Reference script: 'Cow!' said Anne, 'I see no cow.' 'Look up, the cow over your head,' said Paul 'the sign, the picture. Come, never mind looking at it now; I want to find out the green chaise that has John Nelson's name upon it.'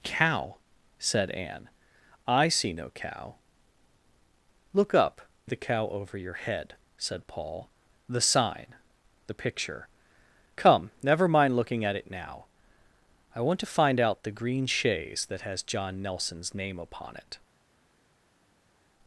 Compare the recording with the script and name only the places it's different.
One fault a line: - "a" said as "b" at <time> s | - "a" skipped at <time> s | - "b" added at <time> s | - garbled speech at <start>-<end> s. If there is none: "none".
none